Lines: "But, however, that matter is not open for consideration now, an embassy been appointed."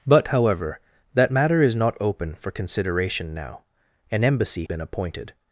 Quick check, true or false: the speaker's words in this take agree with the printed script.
true